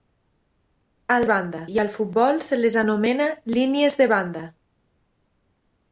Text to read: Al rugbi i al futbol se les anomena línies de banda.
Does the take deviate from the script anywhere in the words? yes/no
yes